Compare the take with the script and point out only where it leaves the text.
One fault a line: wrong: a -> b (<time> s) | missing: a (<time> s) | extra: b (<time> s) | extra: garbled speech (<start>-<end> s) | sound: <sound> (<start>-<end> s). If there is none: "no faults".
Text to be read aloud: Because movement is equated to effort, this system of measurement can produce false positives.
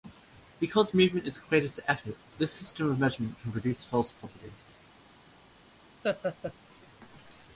sound: laugh (6.0-6.5 s)